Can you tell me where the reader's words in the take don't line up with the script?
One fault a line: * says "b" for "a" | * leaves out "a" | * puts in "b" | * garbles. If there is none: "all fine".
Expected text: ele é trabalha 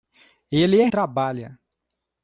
all fine